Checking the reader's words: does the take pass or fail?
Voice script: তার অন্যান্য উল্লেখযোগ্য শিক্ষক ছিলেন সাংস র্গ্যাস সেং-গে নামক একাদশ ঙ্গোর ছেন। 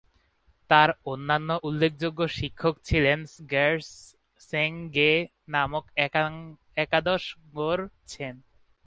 fail